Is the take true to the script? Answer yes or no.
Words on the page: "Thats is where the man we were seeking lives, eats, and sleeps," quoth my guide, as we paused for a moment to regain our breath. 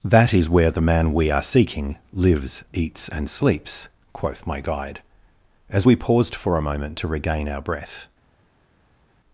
no